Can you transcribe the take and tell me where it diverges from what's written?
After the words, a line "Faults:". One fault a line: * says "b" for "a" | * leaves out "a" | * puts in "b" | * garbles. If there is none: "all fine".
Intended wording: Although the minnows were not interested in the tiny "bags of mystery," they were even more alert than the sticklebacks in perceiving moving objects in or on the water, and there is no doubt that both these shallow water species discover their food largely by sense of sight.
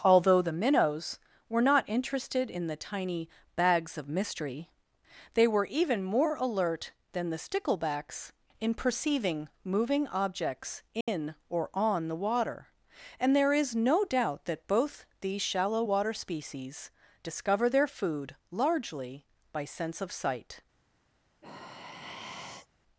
Although the minnows were not interested in the tiny "bags of mystery," they were even more alert than the sticklebacks in perceiving moving objects in or on the water, and there is no doubt that both these shallow water species discover their food largely by sense of sight.
Faults:
all fine